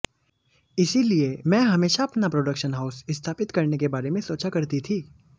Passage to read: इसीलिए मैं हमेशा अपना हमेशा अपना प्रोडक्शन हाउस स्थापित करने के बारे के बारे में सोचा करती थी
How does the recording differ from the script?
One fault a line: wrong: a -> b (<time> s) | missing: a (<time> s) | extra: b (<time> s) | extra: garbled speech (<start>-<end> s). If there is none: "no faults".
missing: हमेशा अपना (2.3 s)
missing: के बारे (4.1 s)